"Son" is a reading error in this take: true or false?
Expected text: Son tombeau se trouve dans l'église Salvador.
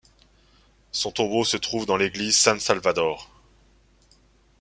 false